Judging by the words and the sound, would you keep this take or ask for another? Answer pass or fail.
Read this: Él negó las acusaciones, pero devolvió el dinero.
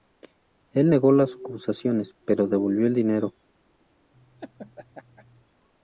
fail